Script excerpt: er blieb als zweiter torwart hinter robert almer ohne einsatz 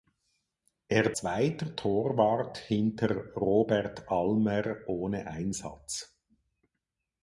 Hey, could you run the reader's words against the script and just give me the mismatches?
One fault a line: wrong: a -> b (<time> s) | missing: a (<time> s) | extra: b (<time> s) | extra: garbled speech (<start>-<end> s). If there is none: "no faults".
missing: blieb als (1.1 s)